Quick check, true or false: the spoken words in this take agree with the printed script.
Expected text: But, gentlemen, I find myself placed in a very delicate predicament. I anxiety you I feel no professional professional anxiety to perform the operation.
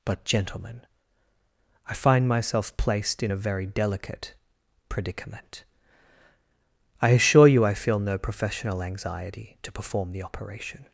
false